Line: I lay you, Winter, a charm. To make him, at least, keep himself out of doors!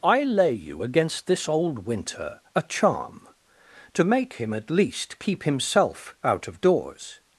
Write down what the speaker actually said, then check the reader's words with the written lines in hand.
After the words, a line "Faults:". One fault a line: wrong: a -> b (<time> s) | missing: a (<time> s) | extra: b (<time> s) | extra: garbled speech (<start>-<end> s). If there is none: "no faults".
I lay you, against this old Winter, a charm. To make him, at least, keep himself out of doors!
Faults:
extra: against this old (0.8 s)